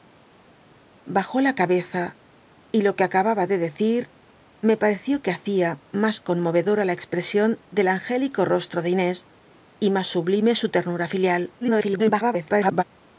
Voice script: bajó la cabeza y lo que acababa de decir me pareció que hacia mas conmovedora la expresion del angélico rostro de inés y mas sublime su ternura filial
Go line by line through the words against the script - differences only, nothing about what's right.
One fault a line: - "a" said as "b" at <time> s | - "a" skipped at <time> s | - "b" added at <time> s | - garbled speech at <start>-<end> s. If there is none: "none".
- garbled speech at 11.6-12.8 s